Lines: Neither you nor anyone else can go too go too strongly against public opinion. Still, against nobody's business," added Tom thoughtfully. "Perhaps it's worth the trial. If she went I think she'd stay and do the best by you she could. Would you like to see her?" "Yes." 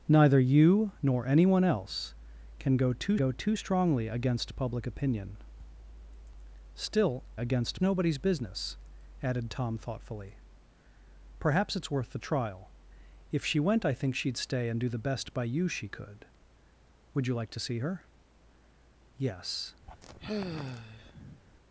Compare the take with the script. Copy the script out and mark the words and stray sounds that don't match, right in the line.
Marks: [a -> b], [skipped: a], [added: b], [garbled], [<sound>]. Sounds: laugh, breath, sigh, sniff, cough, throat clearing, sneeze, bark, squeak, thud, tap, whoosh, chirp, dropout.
Neither you nor anyone else can go too go too strongly against public opinion. Still, against nobody's business," added Tom thoughtfully. "Perhaps it's worth the trial. If she went I think she'd stay and do the best by you she could. Would you like to see her?" "Yes." [sigh]